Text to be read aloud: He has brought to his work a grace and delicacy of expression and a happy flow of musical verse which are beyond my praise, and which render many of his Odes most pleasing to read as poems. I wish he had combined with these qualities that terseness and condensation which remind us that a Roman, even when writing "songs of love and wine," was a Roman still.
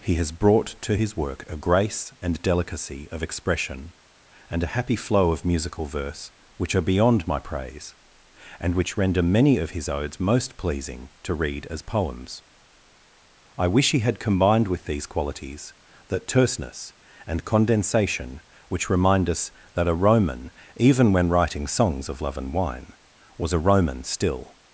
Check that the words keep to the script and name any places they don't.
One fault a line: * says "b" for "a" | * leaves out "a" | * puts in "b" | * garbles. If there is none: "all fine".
all fine